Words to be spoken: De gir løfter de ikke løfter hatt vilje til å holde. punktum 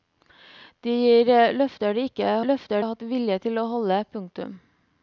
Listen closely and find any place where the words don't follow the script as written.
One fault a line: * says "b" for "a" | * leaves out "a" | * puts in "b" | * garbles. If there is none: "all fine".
all fine